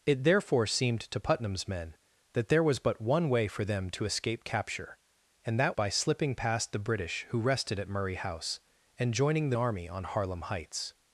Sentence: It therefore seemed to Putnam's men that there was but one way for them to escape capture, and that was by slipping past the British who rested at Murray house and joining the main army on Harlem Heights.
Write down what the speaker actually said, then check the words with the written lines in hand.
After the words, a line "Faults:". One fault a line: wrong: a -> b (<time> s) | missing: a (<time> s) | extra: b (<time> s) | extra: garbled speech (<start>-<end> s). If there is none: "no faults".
It therefore seemed to Putnam's men that there was but one way for them to escape capture, and that by slipping past the British who rested at Murray house and joining the army on Harlem Heights.
Faults:
missing: was (5.8 s)
missing: main (9.6 s)